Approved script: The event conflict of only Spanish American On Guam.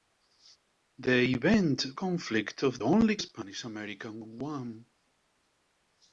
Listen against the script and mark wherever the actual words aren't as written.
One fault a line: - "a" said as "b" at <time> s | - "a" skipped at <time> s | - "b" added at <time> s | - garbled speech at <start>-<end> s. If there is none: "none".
none